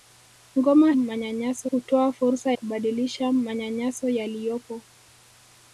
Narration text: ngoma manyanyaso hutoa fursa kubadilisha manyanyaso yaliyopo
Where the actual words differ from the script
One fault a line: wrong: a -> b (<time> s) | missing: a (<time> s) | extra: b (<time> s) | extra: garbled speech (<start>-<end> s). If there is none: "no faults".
no faults